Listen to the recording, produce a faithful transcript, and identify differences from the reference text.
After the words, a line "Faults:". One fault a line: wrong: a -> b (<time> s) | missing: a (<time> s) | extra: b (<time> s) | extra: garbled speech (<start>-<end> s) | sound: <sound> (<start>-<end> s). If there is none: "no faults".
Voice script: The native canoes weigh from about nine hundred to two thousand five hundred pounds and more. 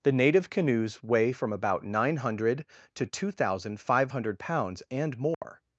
The native canoes weigh from about nine hundred to two thousand five hundred pounds and more.
Faults:
sound: dropout (5.3-5.4 s)